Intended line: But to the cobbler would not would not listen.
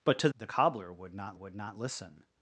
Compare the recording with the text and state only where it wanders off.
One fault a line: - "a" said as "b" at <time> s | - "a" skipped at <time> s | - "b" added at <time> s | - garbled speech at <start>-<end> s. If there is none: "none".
none